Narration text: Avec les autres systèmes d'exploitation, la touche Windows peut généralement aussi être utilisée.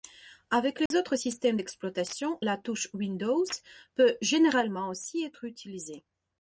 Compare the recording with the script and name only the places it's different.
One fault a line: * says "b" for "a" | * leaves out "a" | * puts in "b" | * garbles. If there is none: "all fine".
all fine